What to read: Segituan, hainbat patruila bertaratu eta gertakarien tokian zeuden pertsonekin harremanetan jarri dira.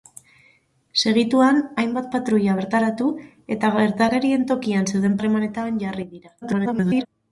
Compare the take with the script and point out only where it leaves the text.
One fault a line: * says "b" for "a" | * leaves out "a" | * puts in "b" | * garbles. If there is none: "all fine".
* leaves out "pertsonekin"
* garbles